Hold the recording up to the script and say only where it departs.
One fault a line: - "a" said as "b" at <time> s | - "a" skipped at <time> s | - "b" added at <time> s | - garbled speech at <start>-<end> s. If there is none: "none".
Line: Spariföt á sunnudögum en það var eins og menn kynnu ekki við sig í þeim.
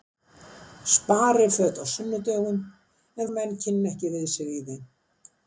- "það var eins" skipped at 3.3 s